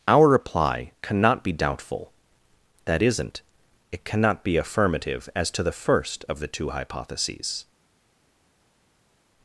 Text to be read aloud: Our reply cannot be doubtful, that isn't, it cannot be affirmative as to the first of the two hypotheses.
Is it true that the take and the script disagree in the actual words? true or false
false